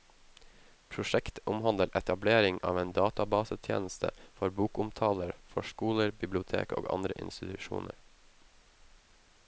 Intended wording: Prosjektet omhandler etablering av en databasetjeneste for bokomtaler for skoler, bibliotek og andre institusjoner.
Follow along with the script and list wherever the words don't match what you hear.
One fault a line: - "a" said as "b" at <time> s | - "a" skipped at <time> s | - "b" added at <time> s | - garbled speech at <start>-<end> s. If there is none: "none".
none